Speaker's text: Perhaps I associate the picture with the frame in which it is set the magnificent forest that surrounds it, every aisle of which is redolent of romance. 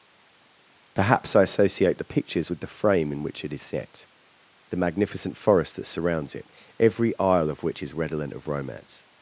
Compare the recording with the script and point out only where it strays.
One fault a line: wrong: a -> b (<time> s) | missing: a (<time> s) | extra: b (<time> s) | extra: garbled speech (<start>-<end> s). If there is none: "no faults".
wrong: picture -> pictures (2.0 s)